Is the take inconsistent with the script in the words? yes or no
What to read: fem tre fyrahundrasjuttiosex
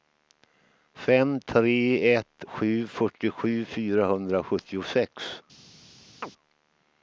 yes